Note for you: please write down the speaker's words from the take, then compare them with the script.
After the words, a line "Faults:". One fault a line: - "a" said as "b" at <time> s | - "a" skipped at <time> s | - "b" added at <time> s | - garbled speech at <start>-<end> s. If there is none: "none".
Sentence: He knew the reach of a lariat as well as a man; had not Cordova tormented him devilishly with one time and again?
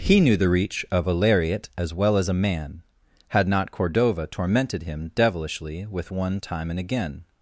He knew the reach of a lariat as well as a man; had not Cordova tormented him devilishly with one time and again?
Faults:
none